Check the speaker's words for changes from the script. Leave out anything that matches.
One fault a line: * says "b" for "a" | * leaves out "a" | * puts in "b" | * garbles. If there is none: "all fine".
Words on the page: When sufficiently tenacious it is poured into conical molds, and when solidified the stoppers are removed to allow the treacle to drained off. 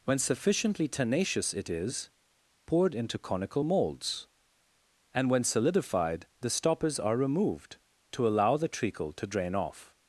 * says "drain" for "drained"